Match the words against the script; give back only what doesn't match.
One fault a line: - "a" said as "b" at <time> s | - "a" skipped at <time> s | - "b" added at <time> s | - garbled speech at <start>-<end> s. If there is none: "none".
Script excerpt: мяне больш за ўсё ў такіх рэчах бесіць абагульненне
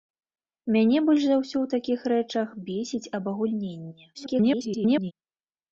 - garbled speech at 4.1-5.1 s